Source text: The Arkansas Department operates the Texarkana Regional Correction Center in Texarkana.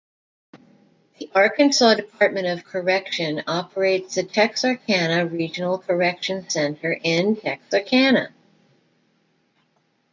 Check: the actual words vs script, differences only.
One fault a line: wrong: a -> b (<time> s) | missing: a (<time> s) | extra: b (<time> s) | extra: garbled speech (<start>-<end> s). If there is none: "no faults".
extra: of Correction (2.5 s)